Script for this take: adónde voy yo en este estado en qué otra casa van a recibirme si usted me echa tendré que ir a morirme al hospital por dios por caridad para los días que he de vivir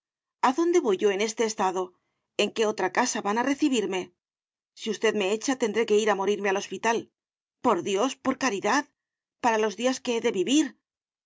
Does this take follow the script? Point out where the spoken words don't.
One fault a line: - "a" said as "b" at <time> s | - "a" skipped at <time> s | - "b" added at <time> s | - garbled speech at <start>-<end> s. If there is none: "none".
none